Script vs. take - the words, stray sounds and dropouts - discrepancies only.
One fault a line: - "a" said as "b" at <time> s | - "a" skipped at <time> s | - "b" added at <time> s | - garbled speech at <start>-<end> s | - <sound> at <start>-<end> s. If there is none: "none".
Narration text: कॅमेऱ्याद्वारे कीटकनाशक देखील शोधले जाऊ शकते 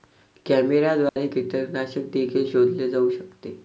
- dropout at 1.1-1.2 s